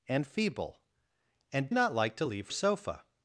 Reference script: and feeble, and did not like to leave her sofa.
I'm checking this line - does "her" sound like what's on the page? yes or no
no